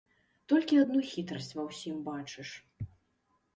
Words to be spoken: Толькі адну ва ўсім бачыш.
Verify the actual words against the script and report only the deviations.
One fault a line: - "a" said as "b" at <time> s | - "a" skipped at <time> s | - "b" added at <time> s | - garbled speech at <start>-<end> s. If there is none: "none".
- "хітрасць" added at 1.1 s